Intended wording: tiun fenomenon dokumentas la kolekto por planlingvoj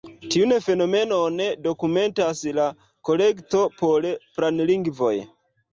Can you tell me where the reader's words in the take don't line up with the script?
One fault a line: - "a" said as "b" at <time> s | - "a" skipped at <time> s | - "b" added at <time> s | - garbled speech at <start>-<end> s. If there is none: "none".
none